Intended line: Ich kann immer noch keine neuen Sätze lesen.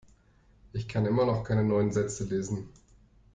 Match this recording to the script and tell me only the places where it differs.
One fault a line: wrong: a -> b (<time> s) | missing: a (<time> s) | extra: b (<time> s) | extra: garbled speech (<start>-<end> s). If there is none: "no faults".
no faults